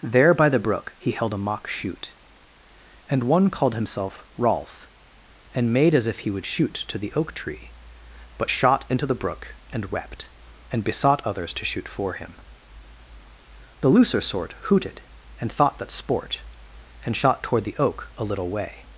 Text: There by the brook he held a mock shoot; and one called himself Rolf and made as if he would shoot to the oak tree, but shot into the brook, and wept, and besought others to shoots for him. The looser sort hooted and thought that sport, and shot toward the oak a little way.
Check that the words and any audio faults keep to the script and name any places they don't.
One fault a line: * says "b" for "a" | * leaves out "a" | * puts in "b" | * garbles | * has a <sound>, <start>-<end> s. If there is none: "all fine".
* says "shoot" for "shoots"